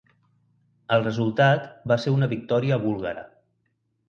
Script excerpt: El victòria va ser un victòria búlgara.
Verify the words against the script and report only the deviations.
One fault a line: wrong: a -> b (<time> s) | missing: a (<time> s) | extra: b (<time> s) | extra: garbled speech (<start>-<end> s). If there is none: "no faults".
wrong: victòria -> resultat (1.1 s)
wrong: un -> una (2.2 s)